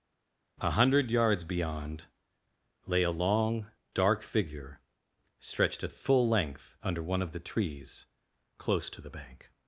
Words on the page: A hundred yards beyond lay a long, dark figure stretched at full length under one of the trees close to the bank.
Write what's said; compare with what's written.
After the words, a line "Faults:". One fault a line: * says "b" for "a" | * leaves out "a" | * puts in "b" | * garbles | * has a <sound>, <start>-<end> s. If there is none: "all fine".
A hundred yards beyond lay a long, dark figure stretched at full length under one of the trees close to the bank.
Faults:
all fine